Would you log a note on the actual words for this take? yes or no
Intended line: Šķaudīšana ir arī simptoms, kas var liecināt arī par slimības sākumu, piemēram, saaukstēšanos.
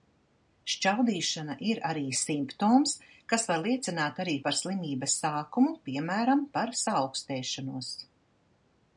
yes